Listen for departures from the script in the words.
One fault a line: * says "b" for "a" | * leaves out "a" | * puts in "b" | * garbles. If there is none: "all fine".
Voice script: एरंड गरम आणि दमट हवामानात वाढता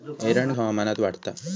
* leaves out "गरम आणि दमट"